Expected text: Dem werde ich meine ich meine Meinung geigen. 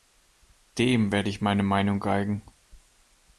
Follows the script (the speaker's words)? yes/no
no